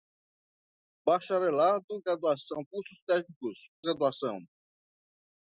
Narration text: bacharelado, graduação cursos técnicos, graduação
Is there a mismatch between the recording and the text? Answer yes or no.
no